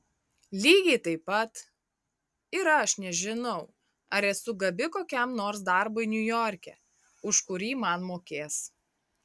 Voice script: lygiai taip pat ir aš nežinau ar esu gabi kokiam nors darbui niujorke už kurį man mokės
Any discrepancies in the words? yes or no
no